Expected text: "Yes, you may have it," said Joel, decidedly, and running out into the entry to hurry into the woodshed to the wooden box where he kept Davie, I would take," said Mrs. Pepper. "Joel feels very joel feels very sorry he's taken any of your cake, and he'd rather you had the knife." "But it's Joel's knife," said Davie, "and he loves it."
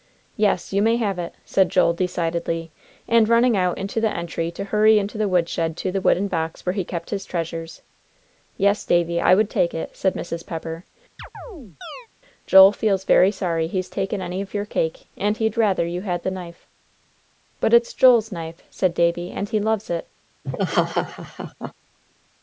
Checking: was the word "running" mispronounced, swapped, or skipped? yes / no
no